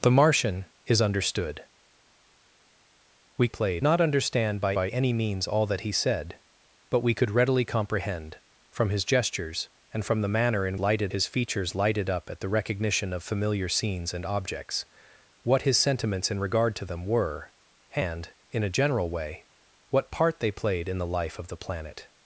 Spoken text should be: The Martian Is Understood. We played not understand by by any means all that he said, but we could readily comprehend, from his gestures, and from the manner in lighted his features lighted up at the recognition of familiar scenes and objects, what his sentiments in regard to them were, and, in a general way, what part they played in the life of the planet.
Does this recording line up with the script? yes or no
yes